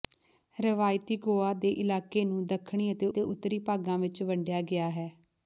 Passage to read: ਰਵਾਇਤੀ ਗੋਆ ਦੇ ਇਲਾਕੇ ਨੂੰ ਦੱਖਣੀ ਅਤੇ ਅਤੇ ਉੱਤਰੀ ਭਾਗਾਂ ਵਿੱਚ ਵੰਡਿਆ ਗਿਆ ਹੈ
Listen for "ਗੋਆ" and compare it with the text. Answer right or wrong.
right